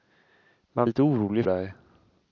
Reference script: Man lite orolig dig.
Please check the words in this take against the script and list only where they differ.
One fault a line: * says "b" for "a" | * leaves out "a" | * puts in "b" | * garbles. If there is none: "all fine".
all fine